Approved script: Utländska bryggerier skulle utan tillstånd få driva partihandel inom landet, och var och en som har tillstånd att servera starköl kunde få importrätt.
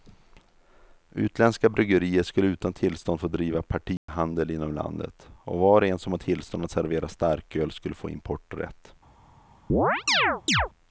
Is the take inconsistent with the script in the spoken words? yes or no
yes